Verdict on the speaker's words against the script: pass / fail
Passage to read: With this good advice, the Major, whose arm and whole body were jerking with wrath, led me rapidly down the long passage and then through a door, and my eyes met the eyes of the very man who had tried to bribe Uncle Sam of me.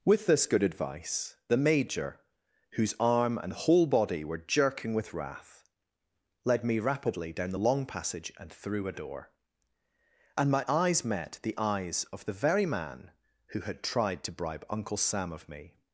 fail